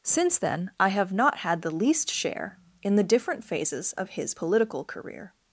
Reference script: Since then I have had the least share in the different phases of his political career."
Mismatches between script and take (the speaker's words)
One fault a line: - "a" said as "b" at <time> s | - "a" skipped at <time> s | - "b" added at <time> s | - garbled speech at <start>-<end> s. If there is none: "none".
- "not" added at 1.1 s